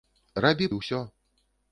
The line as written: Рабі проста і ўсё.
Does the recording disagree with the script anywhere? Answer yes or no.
yes